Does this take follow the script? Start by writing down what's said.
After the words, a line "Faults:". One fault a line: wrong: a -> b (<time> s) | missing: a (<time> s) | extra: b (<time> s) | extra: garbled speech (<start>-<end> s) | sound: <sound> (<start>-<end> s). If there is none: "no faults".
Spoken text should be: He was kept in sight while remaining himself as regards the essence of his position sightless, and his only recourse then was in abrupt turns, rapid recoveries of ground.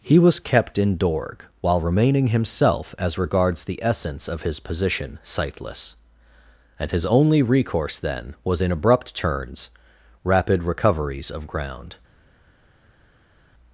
He was kept in dorg while remaining himself as regards the essence of his position sightless, and his only recourse then was in abrupt turns, rapid recoveries of ground.
Faults:
wrong: sight -> dorg (1.0 s)